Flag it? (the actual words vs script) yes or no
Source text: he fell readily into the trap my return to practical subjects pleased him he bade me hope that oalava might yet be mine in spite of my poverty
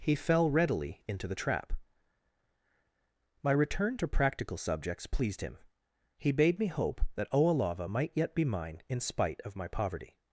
no